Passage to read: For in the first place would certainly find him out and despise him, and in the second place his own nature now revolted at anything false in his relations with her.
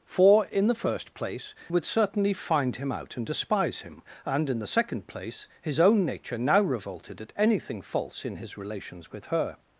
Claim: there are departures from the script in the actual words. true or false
false